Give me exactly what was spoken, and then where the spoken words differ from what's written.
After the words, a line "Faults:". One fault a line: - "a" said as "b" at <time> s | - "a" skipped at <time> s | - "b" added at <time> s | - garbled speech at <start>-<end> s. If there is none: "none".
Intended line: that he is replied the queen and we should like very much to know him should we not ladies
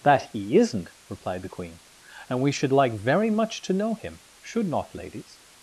that he isn't replied the queen and we should like very much to know him should not ladies
Faults:
- "is" said as "isn't" at 0.6 s
- "we" skipped at 4.7 s